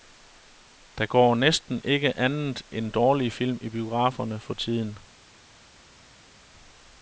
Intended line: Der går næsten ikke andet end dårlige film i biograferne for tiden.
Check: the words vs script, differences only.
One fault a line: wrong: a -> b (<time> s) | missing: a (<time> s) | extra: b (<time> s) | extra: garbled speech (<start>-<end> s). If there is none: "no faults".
no faults